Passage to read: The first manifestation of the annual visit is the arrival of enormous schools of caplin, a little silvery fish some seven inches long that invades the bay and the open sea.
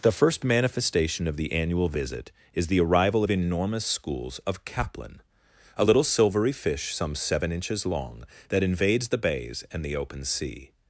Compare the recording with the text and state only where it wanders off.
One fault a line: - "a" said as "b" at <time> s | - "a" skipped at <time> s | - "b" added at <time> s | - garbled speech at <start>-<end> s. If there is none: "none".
- "bay" said as "bays" at 9.2 s